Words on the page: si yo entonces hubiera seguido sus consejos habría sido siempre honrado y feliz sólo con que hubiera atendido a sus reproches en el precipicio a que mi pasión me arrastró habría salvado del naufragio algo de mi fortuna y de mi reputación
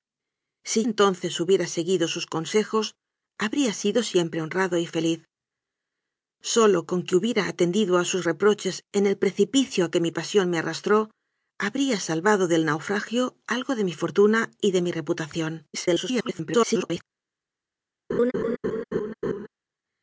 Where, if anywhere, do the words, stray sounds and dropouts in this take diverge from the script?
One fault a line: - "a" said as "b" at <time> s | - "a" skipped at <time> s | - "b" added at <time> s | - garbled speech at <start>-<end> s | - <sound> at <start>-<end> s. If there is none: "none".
- "yo" skipped at 0.8 s
- garbled speech at 15.7-17.0 s
- laugh at 18.1-19.5 s